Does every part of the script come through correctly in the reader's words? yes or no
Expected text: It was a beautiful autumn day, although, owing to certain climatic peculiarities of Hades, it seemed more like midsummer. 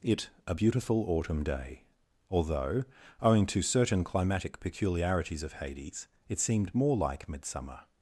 no